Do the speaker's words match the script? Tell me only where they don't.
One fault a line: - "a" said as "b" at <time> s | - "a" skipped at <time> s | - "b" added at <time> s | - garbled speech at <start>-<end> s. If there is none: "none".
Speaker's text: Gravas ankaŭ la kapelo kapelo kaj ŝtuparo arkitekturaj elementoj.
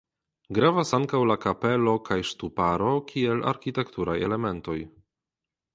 - "kapelo" skipped at 1.9 s
- "kiel" added at 3.1 s